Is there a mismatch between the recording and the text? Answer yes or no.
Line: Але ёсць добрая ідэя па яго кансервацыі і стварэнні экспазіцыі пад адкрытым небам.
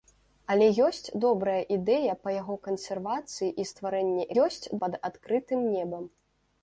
yes